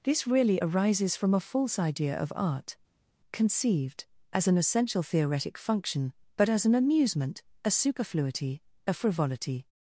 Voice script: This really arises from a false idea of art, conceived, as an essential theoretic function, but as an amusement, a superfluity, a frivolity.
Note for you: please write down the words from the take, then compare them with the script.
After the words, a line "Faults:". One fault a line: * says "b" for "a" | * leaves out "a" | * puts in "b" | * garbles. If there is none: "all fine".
This really arises from a false idea of art, conceived, as an essential theoretic function, but as an amusement, a superfluity, a frivolity.
Faults:
all fine